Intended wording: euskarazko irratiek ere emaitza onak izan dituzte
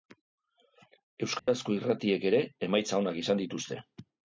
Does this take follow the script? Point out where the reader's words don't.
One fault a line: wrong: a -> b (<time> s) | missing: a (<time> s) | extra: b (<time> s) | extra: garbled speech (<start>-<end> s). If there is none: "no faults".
no faults